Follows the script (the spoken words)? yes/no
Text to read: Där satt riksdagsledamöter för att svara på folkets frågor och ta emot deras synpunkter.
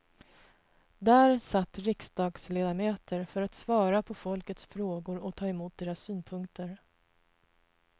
yes